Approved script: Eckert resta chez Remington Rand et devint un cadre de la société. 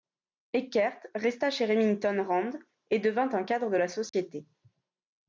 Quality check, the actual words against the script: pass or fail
pass